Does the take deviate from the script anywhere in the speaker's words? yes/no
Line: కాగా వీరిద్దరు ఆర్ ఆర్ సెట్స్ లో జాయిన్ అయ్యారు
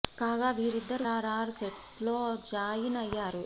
no